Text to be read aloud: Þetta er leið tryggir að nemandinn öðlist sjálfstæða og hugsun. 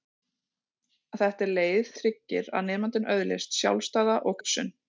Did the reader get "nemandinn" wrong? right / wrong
right